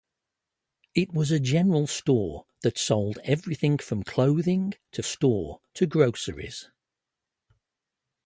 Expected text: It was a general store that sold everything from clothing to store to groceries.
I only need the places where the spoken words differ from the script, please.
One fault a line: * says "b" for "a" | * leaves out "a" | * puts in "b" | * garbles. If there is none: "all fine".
all fine